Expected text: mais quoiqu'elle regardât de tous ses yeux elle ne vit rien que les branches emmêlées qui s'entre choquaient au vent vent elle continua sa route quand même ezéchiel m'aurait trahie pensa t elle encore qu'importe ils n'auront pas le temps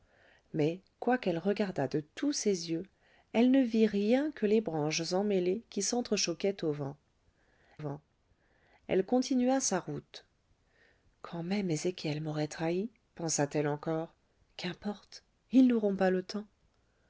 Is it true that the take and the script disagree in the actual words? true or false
false